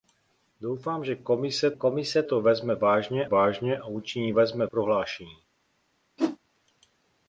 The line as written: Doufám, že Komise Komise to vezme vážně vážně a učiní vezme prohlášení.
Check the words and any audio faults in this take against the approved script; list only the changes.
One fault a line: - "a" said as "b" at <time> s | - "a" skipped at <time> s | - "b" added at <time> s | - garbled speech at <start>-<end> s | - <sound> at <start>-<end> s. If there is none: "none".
- whoosh at 6.2-6.4 s